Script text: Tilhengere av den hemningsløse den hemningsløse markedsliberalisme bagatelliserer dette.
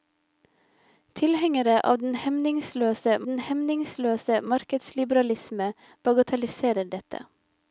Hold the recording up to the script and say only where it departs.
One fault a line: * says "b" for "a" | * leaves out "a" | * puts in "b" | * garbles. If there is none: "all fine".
all fine